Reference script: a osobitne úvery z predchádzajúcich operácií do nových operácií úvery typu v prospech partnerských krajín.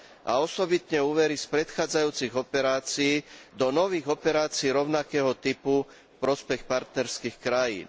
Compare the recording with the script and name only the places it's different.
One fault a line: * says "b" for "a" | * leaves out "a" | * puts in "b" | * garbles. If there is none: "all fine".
* says "rovnakého" for "úvery"